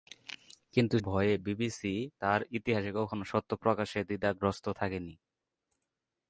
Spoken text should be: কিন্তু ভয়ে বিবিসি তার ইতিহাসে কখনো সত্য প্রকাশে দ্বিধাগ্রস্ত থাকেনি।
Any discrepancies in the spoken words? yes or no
no